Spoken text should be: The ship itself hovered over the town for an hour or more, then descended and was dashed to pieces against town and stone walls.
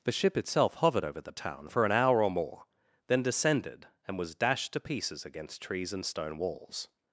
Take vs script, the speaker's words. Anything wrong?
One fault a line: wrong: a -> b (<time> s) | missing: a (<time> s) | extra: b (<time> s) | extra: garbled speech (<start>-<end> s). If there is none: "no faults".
wrong: town -> trees (5.6 s)